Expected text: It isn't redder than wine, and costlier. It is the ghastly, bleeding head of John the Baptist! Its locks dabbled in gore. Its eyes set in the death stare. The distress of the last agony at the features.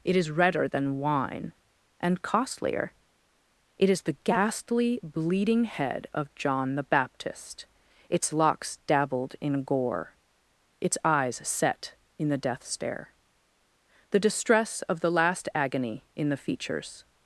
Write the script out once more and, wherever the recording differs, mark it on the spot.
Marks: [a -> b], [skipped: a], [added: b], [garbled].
It [isn't -> is] redder than wine, and costlier. It is the ghastly, bleeding head of John the Baptist! Its locks dabbled in gore. Its eyes set in the death stare. The distress of the last agony [at -> in] the features.